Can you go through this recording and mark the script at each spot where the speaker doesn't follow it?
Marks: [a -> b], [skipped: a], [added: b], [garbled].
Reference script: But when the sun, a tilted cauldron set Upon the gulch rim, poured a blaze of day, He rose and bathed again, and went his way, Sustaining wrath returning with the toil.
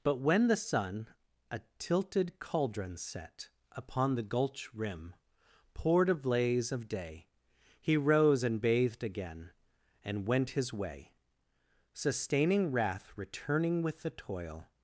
But when the sun, a tilted cauldron set Upon the gulch rim, poured a blaze of day, He rose and bathed again, and went his way, Sustaining wrath returning with the toil.